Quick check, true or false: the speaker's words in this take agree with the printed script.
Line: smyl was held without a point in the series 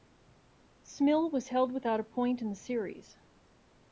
true